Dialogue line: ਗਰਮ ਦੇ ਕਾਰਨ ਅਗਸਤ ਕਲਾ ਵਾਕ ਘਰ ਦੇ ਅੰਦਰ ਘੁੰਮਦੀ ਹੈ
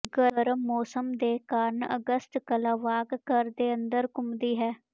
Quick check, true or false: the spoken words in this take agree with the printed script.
false